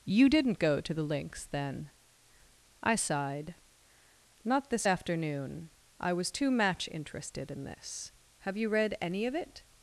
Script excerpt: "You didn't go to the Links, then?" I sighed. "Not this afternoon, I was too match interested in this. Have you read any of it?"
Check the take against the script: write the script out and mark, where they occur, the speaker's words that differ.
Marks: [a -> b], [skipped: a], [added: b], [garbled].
"You didn't go to the Links, then?" I sighed. "Not this afternoon, I was too match interested in this. Have you read any of it?"